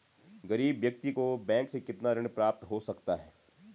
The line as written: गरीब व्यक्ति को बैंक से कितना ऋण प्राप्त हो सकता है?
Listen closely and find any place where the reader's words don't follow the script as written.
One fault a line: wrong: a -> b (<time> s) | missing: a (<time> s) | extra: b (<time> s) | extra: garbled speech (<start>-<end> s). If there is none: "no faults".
no faults